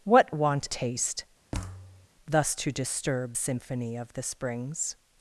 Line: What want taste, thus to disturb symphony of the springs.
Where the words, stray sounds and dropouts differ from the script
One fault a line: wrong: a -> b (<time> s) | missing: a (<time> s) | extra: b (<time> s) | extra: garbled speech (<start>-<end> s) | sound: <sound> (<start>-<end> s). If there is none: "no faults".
sound: thud (1.5-2.1 s)